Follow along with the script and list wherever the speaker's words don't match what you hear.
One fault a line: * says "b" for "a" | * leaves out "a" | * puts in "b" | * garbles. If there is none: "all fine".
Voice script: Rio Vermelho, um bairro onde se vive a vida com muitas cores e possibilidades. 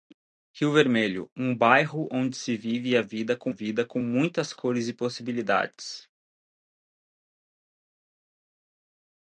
* puts in "vida com"